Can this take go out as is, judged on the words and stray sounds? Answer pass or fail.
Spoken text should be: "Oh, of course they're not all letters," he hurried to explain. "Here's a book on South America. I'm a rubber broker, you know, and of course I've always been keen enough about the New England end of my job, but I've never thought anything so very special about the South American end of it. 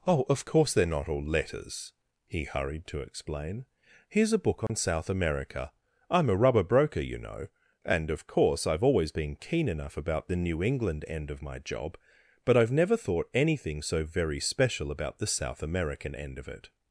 fail